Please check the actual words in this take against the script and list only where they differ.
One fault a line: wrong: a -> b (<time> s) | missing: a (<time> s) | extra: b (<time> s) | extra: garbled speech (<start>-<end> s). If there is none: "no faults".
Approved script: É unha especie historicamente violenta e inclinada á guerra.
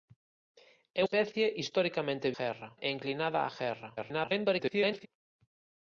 missing: unha (1.0 s)
wrong: violenta -> guerra (2.4 s)
extra: garbled speech (4.0-5.1 s)